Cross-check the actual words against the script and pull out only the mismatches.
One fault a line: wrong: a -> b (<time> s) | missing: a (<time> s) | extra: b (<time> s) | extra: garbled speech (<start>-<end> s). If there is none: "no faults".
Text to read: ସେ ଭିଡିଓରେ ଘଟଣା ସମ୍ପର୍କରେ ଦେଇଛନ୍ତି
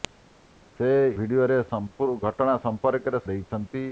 no faults